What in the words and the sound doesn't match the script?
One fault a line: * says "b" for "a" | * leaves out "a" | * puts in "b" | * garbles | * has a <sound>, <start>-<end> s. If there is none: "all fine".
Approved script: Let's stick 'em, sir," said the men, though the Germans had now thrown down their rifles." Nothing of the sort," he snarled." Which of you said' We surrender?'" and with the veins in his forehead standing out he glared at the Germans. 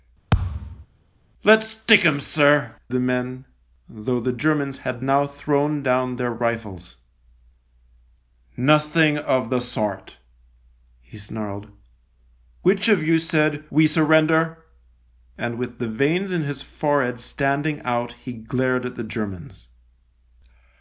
* has a thud, 0.3-0.9 s
* leaves out "said"